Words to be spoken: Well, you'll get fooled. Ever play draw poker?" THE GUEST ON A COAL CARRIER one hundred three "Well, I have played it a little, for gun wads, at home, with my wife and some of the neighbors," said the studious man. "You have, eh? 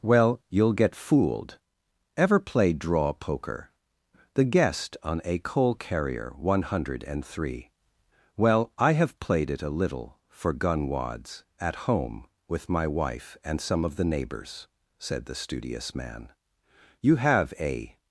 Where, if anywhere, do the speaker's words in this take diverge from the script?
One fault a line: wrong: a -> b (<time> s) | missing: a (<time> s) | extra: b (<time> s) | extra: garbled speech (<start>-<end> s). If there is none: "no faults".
no faults